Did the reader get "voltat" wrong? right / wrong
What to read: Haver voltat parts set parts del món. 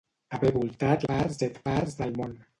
right